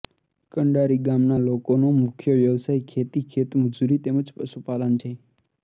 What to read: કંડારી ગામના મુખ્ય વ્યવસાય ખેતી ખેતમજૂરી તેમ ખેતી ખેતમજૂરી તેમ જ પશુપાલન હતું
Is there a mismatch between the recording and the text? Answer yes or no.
yes